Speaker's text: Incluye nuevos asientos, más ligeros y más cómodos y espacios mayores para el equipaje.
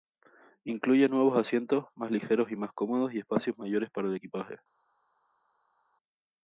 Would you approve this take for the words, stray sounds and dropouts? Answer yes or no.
yes